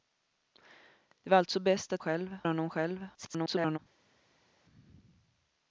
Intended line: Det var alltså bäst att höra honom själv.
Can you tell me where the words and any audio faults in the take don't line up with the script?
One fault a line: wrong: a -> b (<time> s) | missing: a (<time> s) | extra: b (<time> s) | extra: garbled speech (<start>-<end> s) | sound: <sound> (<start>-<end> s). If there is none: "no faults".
wrong: höra -> själv (2.0 s)
extra: garbled speech (3.1-3.8 s)